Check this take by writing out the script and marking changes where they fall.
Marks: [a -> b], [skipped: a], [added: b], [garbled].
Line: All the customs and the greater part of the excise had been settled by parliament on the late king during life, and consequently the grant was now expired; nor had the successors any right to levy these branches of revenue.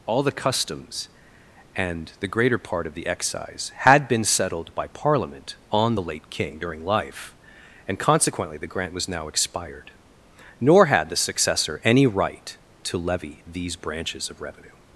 All the customs and the greater part of the excise had been settled by parliament on the late king during life, and consequently the grant was now expired; nor had the [successors -> successor] any right to levy these branches of revenue.